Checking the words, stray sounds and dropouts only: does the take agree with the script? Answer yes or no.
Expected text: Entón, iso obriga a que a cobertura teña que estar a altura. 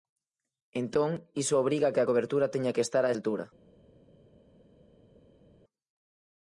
yes